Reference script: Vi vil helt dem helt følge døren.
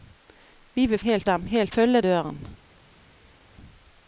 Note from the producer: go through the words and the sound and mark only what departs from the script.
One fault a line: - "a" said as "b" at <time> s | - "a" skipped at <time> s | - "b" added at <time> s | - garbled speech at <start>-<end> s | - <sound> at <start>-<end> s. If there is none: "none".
none